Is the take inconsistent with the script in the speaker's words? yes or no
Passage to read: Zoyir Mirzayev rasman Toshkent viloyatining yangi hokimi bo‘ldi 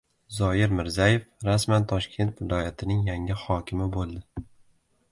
no